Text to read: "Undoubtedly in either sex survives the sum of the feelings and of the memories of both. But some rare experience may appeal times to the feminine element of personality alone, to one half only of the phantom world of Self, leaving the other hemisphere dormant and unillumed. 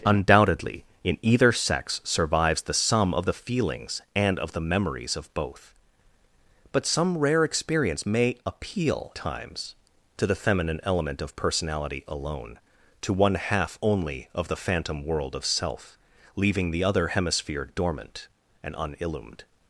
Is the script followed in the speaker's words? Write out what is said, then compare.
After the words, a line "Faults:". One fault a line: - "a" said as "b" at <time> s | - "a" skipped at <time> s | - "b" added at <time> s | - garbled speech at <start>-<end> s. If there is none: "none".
"Undoubtedly in either sex survives the sum of the feelings and of the memories of both. But some rare experience may appeal times to the feminine element of personality alone, to one half only of the phantom world of Self, leaving the other hemisphere dormant and unillumed.
Faults:
none